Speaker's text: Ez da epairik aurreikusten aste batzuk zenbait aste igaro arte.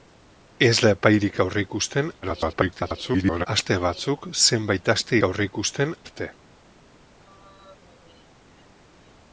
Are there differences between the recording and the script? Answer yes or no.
yes